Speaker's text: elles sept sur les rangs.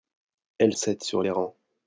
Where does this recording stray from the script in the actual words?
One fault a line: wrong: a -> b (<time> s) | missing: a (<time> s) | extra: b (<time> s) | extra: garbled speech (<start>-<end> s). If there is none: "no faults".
no faults